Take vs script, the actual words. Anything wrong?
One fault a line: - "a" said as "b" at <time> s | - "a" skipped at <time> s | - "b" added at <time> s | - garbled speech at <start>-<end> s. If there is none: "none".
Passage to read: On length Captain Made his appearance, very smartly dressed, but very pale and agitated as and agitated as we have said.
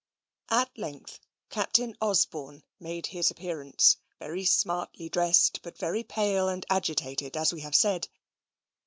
- "On" said as "At" at 0.5 s
- "Osborne" added at 2.0 s
- "and agitated as" skipped at 7.5 s